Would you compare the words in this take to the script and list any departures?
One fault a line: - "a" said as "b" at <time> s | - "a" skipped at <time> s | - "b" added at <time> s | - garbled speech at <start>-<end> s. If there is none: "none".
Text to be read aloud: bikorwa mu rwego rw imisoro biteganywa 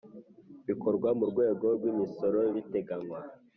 none